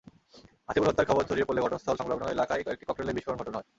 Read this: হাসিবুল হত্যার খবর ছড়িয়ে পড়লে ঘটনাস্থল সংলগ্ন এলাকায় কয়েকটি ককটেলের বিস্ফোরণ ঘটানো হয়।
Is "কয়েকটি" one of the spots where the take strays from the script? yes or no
no